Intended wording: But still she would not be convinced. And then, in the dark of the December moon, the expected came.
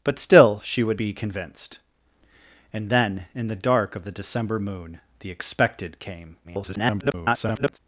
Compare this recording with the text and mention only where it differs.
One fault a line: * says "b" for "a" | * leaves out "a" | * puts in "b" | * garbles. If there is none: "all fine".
* leaves out "not"
* garbles